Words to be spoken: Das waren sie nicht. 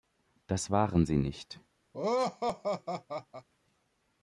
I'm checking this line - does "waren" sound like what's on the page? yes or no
yes